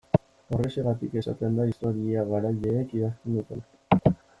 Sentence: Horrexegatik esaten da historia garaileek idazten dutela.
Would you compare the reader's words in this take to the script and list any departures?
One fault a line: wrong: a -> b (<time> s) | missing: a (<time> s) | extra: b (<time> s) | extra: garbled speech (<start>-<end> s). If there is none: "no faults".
no faults